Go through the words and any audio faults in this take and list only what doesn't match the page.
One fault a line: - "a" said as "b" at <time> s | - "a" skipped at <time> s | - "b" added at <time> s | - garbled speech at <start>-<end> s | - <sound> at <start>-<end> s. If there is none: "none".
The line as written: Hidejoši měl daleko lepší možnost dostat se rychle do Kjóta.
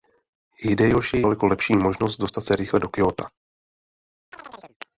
- "měl" skipped at 1.2 s
- chirp at 4.3-4.8 s